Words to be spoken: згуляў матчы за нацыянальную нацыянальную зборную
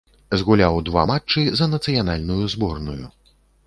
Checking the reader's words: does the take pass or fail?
fail